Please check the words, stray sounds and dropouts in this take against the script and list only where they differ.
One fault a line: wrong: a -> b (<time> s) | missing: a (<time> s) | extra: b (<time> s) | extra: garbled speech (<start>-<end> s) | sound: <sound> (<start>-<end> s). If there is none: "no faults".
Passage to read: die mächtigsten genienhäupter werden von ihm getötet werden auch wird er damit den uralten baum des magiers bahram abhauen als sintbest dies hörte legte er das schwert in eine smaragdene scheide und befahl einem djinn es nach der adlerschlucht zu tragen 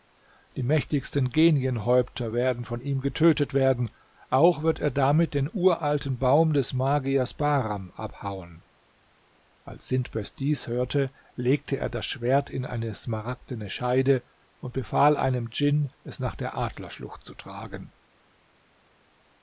no faults